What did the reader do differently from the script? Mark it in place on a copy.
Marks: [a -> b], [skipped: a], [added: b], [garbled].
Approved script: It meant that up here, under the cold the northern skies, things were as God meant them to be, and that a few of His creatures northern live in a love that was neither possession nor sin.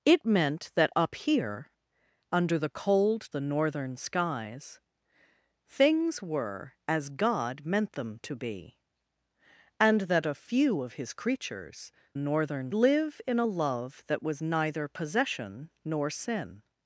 It meant that up here, under the cold the northern skies, things were as God meant them to be, and that a few of His creatures northern live in a love that was neither possession nor sin.